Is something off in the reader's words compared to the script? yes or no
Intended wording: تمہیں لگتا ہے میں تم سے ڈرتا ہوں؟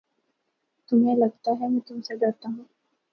no